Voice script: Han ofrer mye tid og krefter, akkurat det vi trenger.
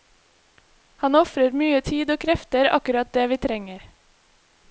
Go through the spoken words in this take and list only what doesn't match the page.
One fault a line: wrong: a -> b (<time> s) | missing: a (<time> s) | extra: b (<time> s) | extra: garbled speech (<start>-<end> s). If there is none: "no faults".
no faults